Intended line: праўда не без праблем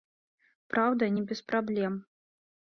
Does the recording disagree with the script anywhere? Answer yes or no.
no